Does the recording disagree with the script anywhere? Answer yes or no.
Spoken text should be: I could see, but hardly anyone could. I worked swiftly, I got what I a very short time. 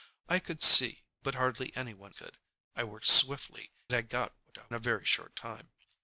no